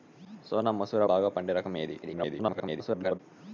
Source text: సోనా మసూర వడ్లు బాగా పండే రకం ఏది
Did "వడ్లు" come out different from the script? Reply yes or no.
yes